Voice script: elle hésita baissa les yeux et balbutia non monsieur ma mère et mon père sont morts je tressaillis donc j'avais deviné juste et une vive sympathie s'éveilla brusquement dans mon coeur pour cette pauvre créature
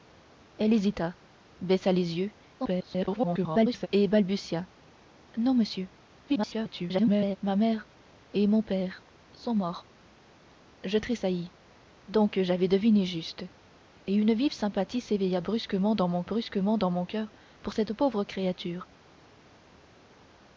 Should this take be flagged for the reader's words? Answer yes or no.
yes